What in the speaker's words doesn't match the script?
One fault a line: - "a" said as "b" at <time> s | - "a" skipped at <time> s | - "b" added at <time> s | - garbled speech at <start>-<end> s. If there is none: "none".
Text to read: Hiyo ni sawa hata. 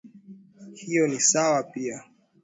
- "hata" said as "pia" at 1.6 s